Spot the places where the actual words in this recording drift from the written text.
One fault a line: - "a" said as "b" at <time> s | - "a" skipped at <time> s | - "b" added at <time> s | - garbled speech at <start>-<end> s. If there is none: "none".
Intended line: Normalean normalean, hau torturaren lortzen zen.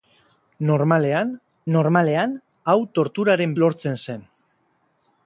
none